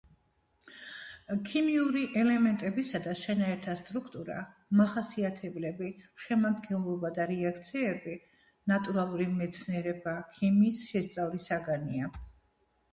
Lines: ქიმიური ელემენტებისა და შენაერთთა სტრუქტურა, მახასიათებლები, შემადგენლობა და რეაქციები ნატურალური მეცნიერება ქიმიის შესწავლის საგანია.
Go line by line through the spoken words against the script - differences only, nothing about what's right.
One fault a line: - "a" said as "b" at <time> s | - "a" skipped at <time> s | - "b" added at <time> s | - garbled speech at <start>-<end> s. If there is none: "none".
none